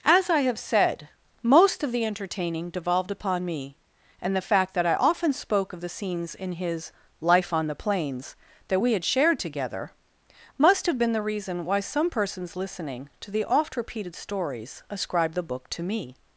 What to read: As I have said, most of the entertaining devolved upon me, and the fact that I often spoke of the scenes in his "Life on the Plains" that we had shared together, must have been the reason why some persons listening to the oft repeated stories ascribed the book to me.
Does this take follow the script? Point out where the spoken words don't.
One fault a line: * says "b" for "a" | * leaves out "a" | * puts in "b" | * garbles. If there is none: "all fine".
all fine